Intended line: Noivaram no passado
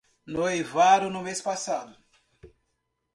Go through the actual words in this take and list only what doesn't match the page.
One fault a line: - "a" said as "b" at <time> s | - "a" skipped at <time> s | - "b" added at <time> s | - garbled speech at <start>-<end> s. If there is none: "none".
- "mês" added at 1.2 s